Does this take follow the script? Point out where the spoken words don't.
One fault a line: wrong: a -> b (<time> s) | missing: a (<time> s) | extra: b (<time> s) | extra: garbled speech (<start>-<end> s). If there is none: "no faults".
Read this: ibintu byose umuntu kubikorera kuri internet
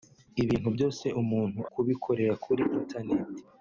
no faults